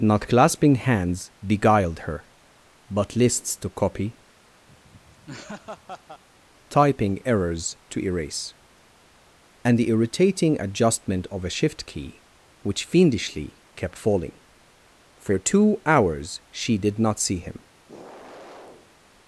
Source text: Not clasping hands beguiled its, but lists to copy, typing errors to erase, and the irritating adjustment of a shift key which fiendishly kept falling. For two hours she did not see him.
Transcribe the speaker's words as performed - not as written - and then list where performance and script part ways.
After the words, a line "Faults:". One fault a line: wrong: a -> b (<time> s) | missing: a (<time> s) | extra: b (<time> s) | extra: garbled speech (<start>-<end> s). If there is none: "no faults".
Not clasping hands beguiled her, but lists to copy, typing errors to erase, and the irritating adjustment of a shift key which fiendishly kept falling. For two hours she did not see him.
Faults:
wrong: its -> her (2.1 s)